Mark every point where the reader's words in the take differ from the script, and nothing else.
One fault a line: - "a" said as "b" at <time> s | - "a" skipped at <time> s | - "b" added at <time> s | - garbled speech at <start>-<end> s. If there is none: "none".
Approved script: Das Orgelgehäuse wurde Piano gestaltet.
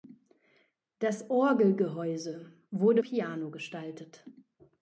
none